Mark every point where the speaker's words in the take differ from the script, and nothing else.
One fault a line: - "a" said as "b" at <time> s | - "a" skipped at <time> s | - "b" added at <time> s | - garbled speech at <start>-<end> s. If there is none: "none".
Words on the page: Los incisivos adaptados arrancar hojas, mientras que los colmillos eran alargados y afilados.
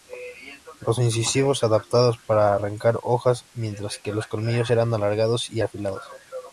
- "para" added at 2.2 s